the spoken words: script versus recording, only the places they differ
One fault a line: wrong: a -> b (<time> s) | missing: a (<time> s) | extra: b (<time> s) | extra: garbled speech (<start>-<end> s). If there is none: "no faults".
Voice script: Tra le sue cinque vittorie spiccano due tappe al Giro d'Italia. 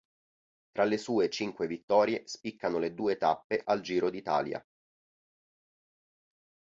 extra: le (2.8 s)